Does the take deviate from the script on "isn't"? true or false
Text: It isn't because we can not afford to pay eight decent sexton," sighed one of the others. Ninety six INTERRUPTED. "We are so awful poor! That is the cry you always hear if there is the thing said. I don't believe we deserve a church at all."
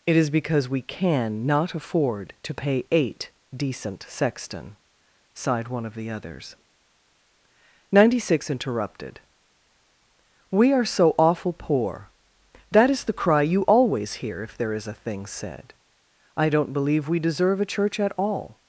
true